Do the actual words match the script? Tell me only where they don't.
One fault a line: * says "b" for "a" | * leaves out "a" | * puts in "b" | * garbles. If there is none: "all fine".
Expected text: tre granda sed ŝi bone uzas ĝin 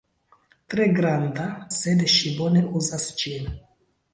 all fine